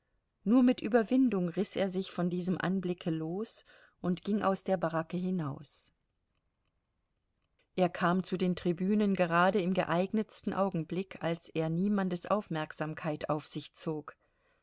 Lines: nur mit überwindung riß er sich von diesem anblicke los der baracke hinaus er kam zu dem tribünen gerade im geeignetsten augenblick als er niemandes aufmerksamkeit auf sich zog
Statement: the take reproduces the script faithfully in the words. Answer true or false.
false